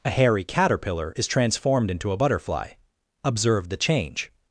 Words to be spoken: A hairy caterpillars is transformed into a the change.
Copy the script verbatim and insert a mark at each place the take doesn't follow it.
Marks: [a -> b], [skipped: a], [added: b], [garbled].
A hairy [caterpillars -> caterpillar] is transformed into a [added: butterfly Observe] the change.